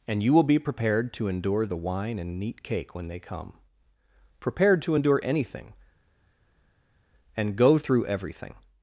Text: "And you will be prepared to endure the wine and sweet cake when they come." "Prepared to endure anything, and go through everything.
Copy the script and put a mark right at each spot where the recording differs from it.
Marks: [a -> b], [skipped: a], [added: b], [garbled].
"And you will be prepared to endure the wine and [sweet -> neat] cake when they come." "Prepared to endure anything, and go through everything.